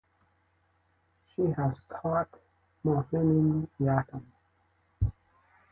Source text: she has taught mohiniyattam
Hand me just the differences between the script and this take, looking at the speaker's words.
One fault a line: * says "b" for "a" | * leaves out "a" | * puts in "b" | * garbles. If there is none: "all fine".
all fine